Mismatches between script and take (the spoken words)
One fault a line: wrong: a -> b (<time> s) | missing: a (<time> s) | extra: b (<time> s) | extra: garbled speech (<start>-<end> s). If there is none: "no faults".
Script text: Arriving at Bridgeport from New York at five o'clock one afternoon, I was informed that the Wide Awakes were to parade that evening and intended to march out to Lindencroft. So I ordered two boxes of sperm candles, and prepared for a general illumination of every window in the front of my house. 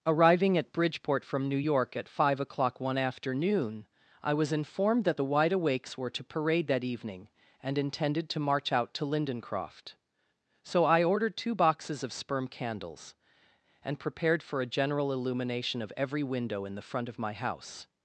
no faults